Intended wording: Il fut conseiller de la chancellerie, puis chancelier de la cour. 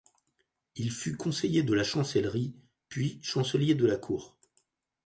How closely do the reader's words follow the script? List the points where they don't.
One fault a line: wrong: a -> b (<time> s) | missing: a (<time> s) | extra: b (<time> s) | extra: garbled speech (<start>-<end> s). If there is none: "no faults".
no faults